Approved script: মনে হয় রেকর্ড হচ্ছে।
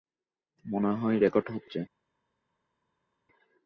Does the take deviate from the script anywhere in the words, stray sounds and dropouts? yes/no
no